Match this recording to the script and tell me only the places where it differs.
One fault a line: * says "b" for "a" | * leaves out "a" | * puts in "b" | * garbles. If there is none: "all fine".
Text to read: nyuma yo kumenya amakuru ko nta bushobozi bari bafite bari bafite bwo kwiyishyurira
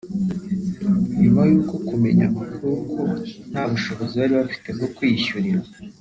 * leaves out "bari bafite"